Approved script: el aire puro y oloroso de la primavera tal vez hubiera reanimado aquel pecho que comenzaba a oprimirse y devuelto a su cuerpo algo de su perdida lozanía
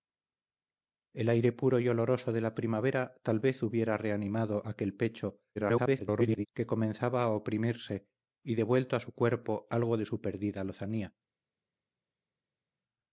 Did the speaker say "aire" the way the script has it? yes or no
yes